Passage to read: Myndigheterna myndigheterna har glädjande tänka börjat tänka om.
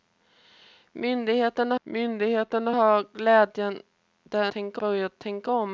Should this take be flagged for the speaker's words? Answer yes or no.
no